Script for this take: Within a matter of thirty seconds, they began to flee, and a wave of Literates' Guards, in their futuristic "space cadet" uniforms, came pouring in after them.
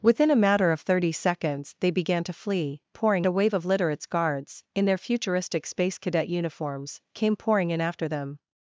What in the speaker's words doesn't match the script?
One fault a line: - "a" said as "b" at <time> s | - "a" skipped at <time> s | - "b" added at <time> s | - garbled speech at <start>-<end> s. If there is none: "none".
- "and" said as "pouring" at 2.9 s